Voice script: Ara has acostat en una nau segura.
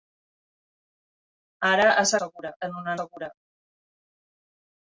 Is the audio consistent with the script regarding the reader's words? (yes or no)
no